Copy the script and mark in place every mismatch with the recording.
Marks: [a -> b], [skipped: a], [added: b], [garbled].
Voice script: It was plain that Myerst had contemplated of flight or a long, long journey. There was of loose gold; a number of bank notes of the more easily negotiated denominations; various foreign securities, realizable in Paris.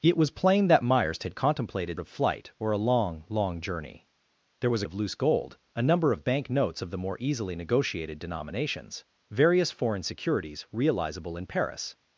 It was plain that Myerst had contemplated of flight or a long, long journey. There was of loose gold; a number of bank notes of the more easily negotiated denominations; various foreign securities, realizable in Paris.